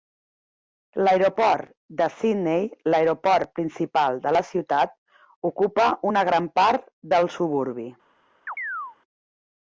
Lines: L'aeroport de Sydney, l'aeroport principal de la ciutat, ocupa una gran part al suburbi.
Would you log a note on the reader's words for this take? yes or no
yes